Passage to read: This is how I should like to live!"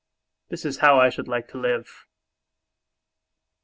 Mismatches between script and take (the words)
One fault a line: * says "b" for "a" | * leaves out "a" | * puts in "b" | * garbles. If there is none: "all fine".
all fine